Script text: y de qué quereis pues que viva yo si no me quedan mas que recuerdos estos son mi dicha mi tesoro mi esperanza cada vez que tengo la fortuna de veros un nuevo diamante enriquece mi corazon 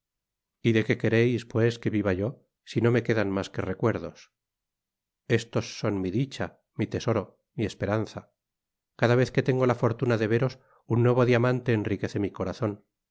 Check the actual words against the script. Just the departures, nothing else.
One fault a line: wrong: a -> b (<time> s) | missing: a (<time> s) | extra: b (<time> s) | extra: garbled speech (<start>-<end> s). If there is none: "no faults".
no faults